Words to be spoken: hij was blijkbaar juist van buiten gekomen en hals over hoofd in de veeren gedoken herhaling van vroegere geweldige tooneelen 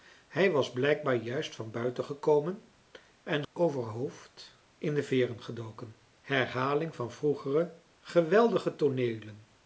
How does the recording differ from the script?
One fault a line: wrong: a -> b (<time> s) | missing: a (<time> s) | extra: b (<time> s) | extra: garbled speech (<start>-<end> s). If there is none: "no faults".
missing: hals (3.4 s)